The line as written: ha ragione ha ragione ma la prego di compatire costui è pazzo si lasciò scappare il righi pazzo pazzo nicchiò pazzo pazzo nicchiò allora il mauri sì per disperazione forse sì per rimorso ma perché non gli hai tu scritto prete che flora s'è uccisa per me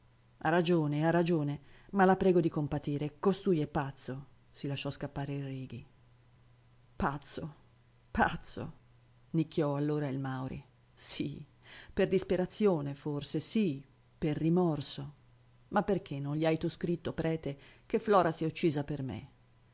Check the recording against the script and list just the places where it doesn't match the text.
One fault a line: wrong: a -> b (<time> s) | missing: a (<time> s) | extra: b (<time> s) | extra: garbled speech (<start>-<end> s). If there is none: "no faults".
missing: pazzo pazzo nicchiò (9.7 s)